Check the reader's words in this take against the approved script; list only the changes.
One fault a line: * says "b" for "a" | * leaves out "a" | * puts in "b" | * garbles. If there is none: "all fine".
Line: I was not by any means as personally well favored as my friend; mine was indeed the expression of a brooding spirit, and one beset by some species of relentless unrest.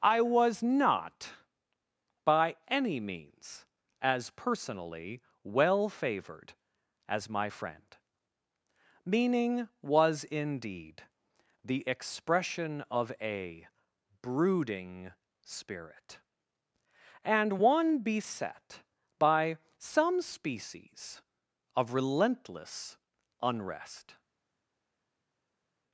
* says "meaning" for "mine"